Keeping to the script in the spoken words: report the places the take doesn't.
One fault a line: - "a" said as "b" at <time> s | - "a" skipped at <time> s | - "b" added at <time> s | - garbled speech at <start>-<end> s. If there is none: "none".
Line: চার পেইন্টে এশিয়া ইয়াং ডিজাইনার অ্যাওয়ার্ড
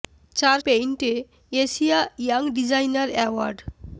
none